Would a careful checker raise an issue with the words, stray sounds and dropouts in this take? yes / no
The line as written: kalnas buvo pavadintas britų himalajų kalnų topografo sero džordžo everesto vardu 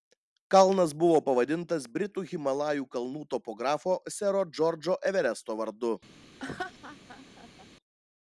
yes